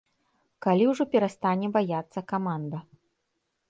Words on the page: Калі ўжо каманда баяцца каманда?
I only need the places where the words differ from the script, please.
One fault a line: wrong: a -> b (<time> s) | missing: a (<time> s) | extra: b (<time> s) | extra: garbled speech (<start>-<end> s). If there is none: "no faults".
wrong: каманда -> перастане (1.1 s)